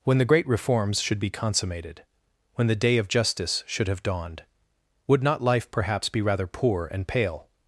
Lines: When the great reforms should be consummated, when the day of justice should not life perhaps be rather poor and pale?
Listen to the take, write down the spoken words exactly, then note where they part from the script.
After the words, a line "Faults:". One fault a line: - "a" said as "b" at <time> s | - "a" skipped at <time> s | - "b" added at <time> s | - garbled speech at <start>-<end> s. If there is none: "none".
When the great reforms should be consummated, when the day of justice should have dawned, would not life perhaps be rather poor and pale?
Faults:
- "have dawned would" added at 3.9 s